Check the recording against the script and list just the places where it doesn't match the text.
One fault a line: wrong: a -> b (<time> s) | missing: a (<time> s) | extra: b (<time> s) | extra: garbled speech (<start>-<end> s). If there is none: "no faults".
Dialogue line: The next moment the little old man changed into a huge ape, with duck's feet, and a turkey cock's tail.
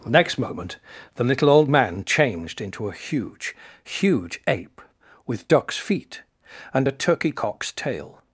extra: huge (3.8 s)